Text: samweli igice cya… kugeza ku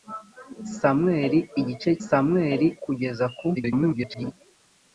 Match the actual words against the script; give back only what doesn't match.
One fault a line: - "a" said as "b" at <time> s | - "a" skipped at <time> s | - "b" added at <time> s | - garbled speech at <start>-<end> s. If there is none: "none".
- "cya" said as "samweli" at 2.1 s
- garbled speech at 3.6-4.3 s